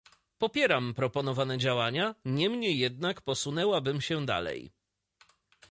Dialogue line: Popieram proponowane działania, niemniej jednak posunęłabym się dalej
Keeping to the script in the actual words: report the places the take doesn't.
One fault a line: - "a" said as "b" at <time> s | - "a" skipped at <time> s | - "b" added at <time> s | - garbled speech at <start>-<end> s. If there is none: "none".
none